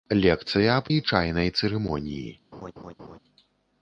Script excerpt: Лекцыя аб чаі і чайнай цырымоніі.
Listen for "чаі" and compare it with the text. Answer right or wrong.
wrong